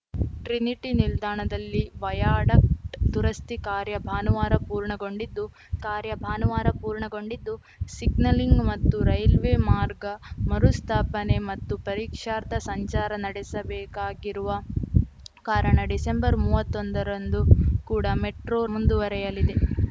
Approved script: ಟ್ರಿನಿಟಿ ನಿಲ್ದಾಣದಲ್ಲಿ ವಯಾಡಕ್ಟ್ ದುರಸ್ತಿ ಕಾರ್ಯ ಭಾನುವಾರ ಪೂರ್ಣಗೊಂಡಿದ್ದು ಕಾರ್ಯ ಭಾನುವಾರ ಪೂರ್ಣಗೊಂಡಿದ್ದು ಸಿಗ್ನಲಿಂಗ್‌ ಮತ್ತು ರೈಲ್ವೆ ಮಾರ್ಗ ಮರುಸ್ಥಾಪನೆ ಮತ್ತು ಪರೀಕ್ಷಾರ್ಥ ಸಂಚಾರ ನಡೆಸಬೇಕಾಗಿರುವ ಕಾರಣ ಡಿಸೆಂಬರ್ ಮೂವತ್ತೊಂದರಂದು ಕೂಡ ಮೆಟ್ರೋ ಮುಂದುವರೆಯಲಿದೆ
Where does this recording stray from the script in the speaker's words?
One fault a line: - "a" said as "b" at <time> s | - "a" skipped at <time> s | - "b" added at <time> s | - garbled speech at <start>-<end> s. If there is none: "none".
none